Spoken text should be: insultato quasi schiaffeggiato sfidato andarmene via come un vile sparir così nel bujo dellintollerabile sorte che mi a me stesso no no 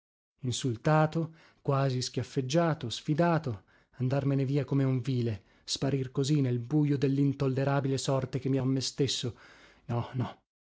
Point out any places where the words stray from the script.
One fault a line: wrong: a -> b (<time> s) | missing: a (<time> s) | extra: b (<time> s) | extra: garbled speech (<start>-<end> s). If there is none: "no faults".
no faults